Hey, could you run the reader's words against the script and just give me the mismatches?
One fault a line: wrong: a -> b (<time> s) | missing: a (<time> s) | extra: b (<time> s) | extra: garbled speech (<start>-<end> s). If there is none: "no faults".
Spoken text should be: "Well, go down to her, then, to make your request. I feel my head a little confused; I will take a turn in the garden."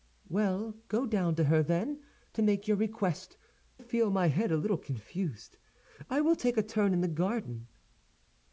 missing: I (3.4 s)